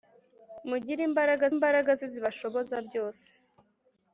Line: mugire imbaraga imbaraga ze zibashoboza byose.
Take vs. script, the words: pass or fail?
pass